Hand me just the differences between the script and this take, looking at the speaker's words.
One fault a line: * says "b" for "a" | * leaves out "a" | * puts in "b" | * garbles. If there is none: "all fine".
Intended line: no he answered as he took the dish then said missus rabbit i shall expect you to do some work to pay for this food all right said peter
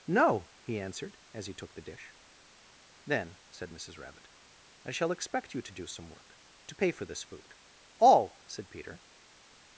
* leaves out "right"